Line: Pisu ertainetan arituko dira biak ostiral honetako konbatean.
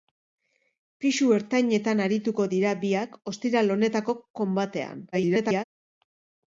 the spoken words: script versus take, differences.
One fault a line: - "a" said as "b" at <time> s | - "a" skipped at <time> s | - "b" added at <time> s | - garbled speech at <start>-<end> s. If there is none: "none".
- garbled speech at 5.1-5.6 s